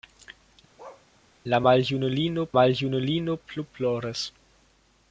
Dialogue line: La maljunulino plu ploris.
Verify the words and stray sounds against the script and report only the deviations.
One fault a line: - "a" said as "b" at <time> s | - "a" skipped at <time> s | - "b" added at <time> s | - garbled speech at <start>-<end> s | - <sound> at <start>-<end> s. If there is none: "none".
- bark at 0.8-1.1 s
- "maljunulino" added at 2.6 s